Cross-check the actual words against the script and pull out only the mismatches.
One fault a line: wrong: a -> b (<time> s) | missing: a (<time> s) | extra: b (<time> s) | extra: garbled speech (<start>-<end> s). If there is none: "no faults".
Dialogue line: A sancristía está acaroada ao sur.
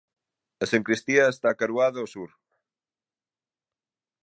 no faults